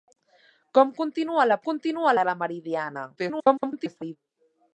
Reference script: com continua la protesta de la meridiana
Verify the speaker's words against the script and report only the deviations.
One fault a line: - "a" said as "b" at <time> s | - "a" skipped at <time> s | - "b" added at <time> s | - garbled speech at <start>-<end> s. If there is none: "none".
- "protesta" said as "continua" at 1.7 s
- garbled speech at 3.2-4.2 s